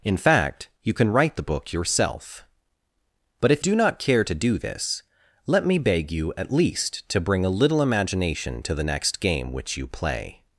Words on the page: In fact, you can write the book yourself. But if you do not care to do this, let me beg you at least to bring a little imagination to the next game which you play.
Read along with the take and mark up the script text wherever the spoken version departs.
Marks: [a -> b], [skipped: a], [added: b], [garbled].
In fact, you can write the book yourself. But if [skipped: you] do not care to do this, let me beg you at least to bring a little imagination to the next game which you play.